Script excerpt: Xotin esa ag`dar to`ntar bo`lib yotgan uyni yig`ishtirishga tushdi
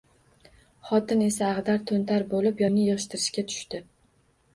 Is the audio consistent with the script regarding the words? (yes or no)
no